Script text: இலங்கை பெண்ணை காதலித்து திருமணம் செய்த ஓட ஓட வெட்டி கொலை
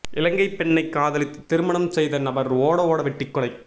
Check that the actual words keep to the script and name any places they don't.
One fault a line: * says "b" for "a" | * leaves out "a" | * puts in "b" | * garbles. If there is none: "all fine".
* puts in "நபர்"